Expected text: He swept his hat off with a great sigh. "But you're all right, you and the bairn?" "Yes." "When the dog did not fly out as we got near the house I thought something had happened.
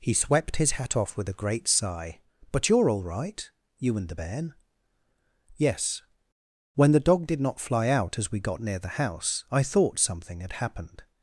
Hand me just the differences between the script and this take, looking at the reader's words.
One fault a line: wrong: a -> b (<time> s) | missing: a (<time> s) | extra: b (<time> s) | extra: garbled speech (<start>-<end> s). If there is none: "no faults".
no faults